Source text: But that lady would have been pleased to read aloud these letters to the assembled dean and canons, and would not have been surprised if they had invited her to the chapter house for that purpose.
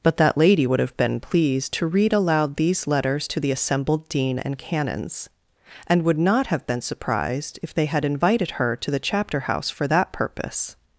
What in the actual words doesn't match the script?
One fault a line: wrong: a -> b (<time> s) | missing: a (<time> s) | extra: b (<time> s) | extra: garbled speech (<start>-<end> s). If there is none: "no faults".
no faults